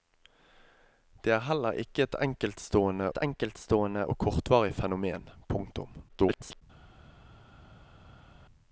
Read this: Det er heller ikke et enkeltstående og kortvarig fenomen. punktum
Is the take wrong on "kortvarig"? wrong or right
right